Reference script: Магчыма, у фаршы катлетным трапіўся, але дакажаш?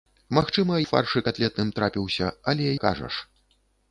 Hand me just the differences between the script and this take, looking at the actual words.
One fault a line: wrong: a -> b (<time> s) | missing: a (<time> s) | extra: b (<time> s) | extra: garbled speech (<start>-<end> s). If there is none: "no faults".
no faults